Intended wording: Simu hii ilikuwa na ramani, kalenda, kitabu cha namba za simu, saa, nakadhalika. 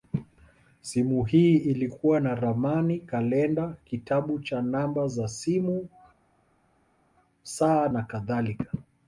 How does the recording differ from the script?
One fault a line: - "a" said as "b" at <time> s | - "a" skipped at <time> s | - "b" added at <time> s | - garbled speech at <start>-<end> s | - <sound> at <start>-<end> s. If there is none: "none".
none